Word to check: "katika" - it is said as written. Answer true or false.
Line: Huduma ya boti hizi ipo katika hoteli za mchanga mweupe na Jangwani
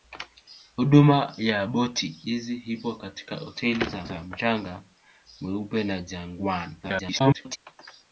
true